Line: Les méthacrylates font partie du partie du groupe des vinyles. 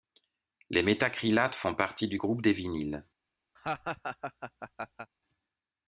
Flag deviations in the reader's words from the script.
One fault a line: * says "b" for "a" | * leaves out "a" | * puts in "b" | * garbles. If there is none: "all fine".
* leaves out "partie du"